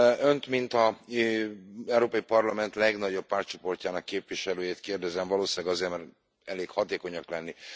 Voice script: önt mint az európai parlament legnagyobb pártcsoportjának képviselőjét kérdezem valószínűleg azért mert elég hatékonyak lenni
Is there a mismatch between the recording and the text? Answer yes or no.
no